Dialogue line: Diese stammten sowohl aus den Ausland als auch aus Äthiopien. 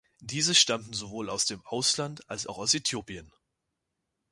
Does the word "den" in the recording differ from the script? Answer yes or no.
yes